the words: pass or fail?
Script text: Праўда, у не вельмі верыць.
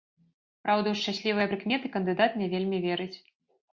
fail